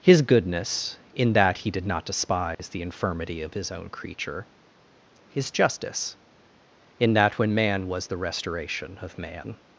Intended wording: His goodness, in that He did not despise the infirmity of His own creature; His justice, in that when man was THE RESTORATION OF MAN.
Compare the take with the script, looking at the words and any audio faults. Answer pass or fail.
fail